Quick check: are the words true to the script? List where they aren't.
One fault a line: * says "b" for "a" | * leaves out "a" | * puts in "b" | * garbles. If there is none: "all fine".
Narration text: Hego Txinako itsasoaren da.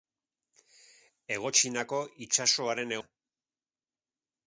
all fine